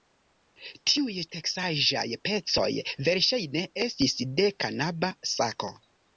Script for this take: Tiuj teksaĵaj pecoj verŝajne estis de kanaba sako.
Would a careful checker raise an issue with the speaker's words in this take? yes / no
no